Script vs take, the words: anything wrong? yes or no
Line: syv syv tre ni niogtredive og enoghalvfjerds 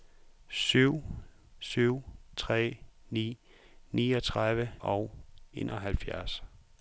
no